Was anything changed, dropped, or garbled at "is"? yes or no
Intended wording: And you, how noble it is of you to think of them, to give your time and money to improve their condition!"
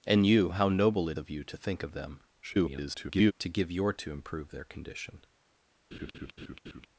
yes